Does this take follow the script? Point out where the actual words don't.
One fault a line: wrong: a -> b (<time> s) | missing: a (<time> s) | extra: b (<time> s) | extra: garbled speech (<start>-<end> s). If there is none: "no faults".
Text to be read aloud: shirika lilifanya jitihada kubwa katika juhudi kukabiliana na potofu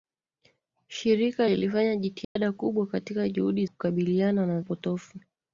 no faults